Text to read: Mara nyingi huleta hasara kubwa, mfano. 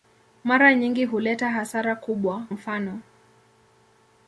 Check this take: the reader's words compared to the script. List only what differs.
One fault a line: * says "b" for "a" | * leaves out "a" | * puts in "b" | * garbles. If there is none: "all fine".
all fine